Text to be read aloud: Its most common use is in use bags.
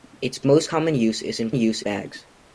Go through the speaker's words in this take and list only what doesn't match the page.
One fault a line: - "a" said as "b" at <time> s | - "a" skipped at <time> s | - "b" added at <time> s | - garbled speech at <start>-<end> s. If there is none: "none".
none